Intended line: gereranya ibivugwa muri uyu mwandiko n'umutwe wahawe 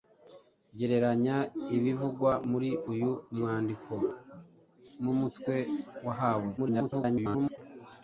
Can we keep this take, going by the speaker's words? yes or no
no